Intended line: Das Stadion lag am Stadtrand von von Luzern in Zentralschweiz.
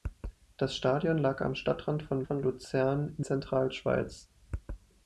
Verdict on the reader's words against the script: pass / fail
pass